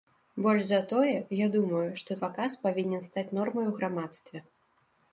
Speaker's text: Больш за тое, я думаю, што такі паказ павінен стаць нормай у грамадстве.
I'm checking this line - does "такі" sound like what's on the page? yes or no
no